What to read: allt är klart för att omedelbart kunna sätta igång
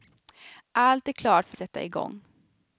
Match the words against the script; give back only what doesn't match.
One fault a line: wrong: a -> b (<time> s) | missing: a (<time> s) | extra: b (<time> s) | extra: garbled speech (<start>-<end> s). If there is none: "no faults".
missing: att omedelbart kunna (1.6 s)